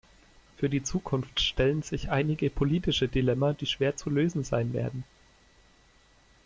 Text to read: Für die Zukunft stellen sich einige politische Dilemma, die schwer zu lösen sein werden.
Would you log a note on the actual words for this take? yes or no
no